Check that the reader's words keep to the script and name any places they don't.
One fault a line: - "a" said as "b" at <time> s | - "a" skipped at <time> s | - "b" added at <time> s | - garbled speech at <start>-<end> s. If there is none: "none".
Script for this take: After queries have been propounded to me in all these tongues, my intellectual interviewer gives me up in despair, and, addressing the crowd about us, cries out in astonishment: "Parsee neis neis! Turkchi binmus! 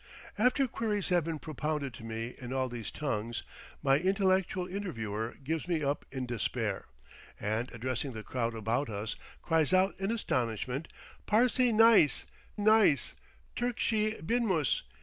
none